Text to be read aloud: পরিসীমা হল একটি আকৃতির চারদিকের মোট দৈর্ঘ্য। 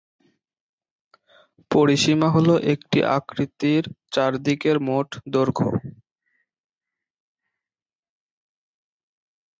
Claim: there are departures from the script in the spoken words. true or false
false